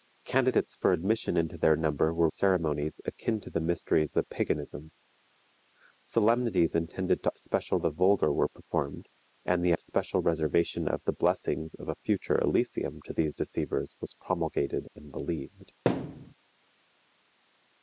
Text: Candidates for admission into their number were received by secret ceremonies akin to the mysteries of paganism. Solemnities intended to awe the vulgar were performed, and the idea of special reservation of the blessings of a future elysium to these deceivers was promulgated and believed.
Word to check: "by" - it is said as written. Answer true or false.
false